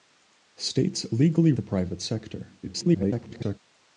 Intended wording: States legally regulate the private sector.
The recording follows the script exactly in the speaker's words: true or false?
false